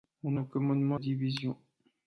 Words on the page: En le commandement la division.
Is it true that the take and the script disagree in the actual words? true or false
false